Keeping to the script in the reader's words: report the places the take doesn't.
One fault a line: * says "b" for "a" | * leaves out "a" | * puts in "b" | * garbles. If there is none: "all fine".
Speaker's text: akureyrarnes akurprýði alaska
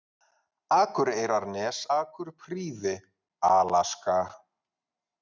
all fine